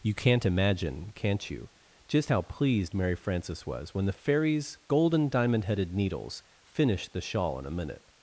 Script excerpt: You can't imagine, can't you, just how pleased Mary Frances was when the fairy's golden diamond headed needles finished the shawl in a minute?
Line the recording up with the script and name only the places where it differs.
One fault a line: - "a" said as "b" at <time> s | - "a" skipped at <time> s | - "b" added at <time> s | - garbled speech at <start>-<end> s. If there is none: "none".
none